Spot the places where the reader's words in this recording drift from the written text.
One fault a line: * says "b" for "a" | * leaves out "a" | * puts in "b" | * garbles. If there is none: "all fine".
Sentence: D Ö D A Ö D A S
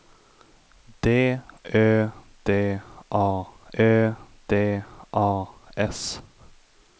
all fine